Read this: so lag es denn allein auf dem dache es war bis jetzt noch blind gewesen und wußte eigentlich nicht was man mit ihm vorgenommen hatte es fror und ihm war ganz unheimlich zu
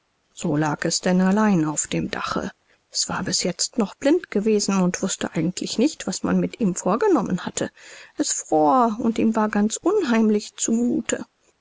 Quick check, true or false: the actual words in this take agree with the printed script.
true